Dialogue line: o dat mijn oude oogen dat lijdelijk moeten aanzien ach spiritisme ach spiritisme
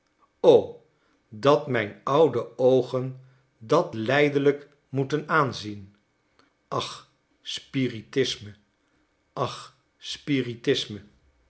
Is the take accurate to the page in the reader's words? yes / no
yes